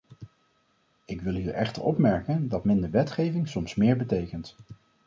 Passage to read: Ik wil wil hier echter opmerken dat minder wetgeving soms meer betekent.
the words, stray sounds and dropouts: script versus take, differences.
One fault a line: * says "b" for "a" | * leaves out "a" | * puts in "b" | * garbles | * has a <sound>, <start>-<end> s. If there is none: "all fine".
* leaves out "wil"